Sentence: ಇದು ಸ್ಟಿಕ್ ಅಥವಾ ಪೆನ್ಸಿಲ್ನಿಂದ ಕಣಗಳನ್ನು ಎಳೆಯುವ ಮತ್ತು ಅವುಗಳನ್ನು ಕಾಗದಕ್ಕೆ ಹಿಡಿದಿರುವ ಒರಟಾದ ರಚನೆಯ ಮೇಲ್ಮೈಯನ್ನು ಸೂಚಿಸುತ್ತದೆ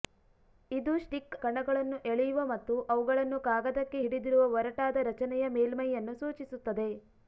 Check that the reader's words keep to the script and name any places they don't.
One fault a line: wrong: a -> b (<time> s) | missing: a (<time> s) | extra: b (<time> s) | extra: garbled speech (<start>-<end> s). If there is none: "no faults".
missing: ಅಥವಾ ಪೆನ್ಸಿಲ್ನಿಂದ (1.4 s)